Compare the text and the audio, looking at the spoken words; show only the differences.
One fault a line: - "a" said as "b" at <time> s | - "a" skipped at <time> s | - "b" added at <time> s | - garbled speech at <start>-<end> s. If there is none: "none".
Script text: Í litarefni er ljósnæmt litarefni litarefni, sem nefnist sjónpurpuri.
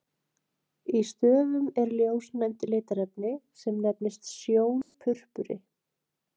- "litarefni" said as "stöfum" at 1.1 s
- "litarefni" skipped at 3.3 s